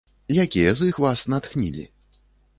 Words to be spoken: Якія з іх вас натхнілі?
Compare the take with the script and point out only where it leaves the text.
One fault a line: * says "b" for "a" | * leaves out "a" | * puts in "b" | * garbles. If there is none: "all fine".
all fine